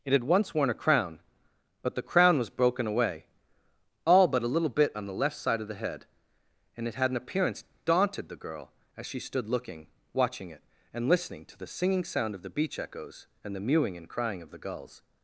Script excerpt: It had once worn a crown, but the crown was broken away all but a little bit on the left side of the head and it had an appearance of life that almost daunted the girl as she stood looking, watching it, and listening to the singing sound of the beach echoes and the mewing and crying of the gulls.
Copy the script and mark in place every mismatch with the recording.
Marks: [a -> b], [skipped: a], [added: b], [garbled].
It had once worn a crown, but the crown was broken away all but a little bit on the left side of the head and it had an appearance [skipped: of life that almost] daunted the girl as she stood looking, watching it, and listening to the singing sound of the beach echoes and the mewing and crying of the gulls.